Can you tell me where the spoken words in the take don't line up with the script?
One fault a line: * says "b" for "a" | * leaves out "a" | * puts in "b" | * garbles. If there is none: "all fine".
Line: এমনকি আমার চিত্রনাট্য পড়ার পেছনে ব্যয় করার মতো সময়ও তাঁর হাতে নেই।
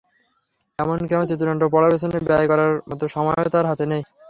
all fine